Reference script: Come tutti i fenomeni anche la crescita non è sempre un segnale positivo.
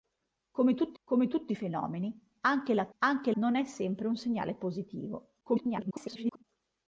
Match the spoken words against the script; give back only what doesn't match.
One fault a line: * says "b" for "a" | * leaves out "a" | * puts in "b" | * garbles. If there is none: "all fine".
* puts in "come tutti"
* says "anche" for "crescita"
* garbles